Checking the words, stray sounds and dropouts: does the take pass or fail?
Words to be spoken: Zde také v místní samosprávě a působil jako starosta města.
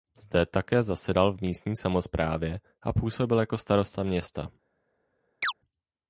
fail